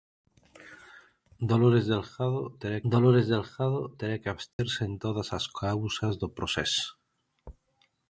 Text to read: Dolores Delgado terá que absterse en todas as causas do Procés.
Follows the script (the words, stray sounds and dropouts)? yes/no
no